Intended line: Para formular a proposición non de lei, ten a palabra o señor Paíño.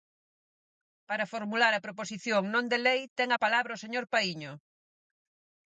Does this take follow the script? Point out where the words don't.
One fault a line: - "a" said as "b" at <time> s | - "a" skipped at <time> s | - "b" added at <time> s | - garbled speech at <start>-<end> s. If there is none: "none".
none